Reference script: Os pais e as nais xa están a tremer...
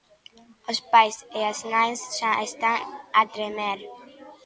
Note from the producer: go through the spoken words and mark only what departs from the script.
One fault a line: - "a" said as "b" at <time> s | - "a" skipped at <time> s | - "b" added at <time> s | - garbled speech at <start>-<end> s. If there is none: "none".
none